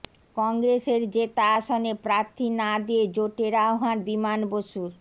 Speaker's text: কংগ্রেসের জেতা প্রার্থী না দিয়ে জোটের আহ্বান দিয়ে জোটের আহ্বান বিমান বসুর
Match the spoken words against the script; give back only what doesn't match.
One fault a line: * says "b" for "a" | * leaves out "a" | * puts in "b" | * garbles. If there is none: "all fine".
* puts in "আসনে"
* leaves out "দিয়ে জোটের আহ্বান"